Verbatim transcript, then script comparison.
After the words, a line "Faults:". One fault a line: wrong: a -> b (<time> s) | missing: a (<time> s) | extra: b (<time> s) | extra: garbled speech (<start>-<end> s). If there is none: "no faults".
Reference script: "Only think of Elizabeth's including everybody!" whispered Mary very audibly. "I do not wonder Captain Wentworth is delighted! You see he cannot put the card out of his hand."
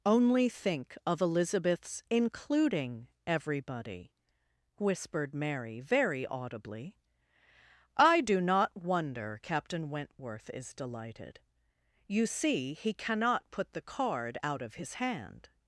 "Only think of Elizabeth's including everybody!" whispered Mary very audibly. "I do not wonder Captain Wentworth is delighted! You see he cannot put the card out of his hand."
Faults:
no faults